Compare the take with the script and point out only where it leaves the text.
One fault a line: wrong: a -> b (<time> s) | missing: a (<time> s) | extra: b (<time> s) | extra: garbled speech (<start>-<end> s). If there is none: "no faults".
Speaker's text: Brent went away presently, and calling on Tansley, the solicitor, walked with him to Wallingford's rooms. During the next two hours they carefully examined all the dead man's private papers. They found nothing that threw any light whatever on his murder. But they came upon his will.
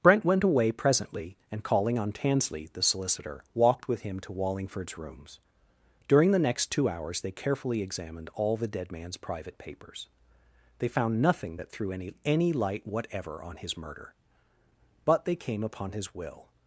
extra: any (12.2 s)